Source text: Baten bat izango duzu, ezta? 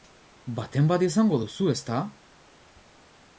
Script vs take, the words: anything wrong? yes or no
no